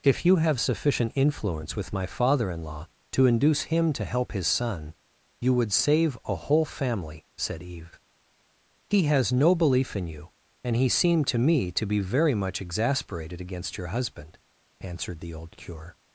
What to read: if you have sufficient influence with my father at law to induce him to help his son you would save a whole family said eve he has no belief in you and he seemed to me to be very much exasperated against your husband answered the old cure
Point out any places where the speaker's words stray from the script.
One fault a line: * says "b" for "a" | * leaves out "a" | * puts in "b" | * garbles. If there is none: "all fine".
* says "in" for "at"